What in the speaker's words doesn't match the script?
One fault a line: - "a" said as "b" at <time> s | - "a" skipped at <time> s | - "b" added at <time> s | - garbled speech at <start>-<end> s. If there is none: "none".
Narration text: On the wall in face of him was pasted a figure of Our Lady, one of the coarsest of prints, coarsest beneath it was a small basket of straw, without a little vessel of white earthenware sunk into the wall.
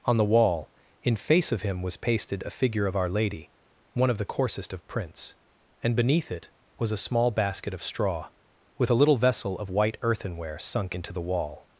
- "coarsest" said as "and" at 5.8 s
- "without" said as "with" at 8.8 s